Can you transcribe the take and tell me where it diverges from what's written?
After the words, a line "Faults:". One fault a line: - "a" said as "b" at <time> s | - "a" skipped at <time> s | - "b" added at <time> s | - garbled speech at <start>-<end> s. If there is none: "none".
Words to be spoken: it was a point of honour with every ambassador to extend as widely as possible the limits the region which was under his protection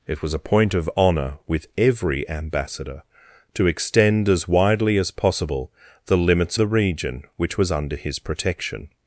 it was a point of honour with every ambassador to extend as widely as possible the limits the region which was under his protection
Faults:
none